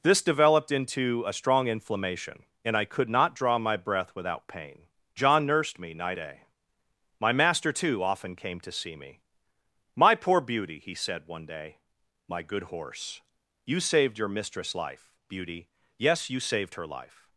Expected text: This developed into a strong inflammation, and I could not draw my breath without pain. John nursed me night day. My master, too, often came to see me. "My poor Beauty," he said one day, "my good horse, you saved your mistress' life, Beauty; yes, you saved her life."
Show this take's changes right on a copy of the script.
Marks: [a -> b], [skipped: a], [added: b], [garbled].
This developed into a strong inflammation, and I could not draw my breath without pain. John nursed me night day. My master, too, often came to see me. "My poor Beauty," he said one day, "my good horse, you saved your mistress' life, Beauty; yes, you saved her life."